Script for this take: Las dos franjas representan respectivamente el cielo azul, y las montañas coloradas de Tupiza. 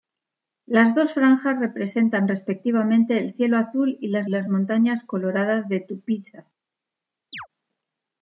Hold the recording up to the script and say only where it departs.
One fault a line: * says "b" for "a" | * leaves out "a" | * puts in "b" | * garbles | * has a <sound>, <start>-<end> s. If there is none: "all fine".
* puts in "las"
* has a chirp, 7.3-7.5 s